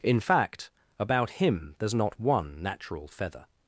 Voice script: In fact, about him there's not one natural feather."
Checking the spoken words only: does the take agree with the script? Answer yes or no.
yes